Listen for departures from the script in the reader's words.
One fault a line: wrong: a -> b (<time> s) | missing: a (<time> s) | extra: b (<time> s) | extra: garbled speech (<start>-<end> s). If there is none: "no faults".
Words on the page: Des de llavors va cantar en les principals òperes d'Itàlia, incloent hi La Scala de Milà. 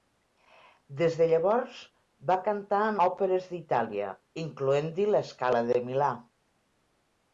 missing: les principals (3.0 s)